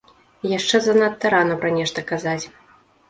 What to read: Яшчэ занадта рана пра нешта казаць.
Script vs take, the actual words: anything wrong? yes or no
no